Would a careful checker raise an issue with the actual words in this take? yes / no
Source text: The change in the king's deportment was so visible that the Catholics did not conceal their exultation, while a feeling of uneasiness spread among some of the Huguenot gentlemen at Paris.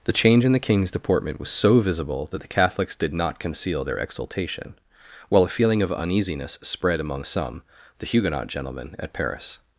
yes